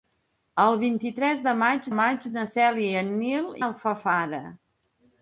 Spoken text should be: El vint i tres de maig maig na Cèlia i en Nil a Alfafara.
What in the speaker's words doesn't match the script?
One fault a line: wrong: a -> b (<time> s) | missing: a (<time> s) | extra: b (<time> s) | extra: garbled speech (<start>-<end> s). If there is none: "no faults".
no faults